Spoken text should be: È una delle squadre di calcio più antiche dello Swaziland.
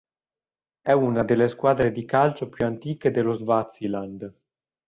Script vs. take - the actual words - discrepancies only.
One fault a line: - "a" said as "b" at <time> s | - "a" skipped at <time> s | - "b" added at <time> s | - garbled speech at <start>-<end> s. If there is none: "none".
none